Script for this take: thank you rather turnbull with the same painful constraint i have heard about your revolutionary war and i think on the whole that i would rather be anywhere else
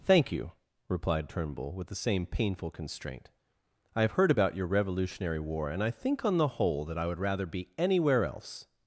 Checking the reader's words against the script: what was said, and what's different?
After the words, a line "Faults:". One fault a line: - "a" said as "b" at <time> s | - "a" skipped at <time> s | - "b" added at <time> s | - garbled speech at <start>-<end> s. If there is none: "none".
thank you replied turnbull with the same painful constraint i have heard about your revolutionary war and i think on the whole that i would rather be anywhere else
Faults:
- "rather" said as "replied" at 0.9 s